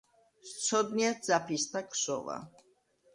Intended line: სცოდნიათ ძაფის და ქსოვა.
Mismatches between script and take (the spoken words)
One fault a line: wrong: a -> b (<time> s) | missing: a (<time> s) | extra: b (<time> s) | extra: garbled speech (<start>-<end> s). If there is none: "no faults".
no faults